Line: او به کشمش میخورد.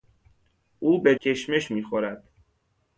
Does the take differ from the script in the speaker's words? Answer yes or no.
no